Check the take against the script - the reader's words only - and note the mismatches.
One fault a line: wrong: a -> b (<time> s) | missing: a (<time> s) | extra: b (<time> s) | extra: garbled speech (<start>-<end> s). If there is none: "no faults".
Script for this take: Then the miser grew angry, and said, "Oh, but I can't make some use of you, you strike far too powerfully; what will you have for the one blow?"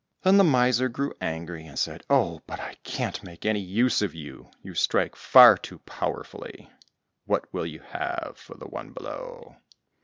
wrong: some -> any (3.4 s)